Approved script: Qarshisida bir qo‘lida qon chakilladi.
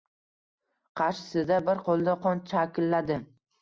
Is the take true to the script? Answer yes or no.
yes